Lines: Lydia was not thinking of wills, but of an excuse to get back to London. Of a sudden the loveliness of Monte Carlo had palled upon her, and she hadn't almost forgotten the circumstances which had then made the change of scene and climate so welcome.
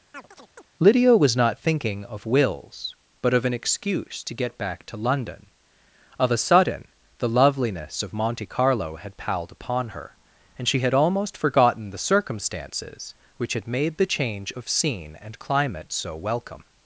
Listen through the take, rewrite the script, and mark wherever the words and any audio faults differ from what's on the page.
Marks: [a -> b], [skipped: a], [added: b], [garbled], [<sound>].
[chirp] Lydia was not thinking of wills, but of an excuse to get back to London. Of a sudden the loveliness of Monte Carlo had palled upon her, and she [hadn't -> had] almost forgotten the circumstances which had [skipped: then] made the change of scene and climate so welcome.